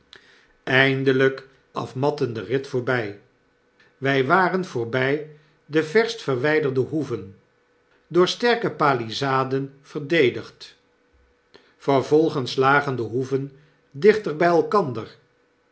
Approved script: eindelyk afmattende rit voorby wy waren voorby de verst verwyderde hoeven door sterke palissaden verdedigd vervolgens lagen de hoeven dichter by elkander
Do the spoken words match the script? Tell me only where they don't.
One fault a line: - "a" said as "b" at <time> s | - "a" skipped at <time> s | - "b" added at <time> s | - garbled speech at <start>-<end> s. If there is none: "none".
none